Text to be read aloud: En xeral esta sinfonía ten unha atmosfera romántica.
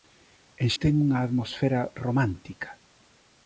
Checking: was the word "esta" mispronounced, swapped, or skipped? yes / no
yes